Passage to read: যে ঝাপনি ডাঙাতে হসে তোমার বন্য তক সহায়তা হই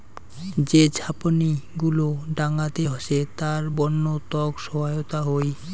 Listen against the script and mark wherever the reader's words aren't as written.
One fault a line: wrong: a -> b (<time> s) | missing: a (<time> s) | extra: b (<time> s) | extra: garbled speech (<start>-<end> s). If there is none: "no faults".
extra: গুলো (1.8 s)
wrong: তোমার -> তার (3.4 s)